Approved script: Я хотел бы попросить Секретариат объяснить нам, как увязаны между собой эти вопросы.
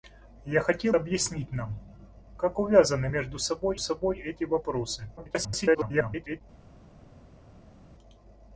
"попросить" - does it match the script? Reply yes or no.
no